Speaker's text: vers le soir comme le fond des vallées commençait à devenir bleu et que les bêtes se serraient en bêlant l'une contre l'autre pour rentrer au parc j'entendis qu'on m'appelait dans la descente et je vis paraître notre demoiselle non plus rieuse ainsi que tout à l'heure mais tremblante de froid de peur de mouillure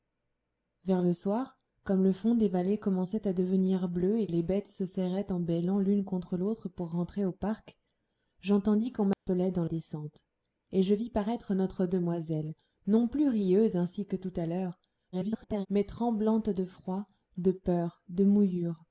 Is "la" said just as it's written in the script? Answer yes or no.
no